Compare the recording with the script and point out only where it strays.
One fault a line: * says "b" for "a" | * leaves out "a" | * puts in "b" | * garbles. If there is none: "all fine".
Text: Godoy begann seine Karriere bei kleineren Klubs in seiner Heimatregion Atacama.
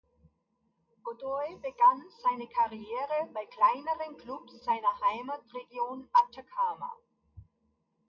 * leaves out "in"